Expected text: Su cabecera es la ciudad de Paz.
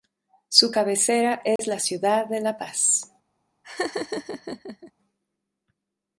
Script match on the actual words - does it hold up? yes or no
no